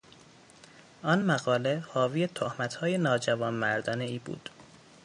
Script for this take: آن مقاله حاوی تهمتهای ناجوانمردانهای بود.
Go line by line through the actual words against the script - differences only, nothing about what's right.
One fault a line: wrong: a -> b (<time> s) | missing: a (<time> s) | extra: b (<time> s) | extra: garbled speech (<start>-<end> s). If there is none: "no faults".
no faults